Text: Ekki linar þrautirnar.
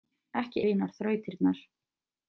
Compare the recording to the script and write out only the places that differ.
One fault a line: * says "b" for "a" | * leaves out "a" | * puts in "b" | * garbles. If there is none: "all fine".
all fine